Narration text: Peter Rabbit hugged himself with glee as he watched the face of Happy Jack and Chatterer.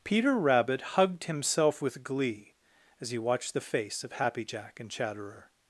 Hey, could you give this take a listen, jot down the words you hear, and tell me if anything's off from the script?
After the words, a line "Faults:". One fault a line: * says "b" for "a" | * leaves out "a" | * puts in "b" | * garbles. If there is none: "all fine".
Peter Rabbit hugged himself with glee as he watched the face of Happy Jack and Chatterer.
Faults:
all fine